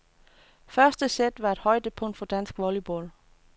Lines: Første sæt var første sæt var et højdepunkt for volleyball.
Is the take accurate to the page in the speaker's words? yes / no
no